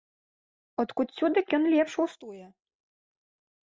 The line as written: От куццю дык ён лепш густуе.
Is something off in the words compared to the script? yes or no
no